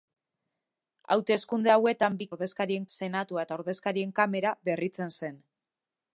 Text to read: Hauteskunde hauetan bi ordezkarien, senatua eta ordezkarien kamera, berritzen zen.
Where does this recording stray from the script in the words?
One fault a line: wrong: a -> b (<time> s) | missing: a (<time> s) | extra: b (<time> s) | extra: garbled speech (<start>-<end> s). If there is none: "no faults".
no faults